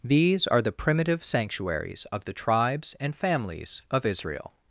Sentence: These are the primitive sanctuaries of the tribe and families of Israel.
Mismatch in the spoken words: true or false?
true